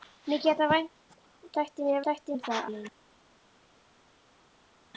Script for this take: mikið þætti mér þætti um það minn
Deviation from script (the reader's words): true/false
false